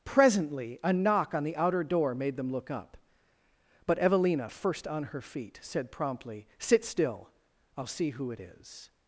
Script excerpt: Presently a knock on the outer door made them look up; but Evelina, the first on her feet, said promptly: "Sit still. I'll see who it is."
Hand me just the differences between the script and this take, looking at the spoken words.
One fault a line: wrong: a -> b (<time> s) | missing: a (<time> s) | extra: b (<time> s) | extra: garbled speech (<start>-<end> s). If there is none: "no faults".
missing: the (4.5 s)